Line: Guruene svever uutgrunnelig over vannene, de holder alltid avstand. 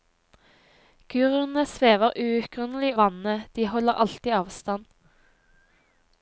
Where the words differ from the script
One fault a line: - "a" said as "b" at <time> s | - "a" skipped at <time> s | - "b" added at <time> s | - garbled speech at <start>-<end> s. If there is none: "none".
- "over" skipped at 2.9 s